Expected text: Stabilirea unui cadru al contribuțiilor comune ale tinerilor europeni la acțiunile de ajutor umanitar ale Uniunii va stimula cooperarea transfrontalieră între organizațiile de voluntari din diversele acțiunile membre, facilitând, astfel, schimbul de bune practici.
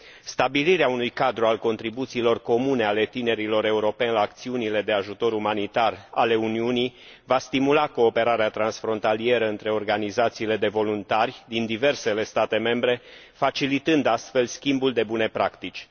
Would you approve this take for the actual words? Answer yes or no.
no